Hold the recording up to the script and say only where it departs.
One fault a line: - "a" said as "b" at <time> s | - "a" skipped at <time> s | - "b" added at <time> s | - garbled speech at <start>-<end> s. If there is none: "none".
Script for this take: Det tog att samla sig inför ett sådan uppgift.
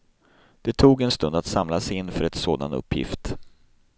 - "en stund" added at 1.0 s